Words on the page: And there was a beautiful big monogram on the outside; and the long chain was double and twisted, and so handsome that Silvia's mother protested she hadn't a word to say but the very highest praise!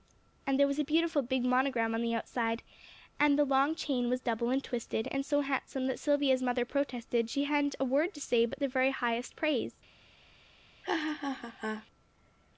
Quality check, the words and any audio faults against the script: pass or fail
fail